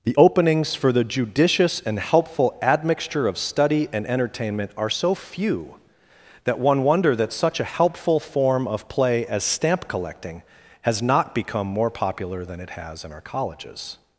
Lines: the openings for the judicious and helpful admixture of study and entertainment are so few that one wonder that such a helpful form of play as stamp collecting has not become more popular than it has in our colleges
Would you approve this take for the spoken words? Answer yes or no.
yes